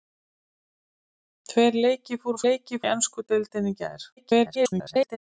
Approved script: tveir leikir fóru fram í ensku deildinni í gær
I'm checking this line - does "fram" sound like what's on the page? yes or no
no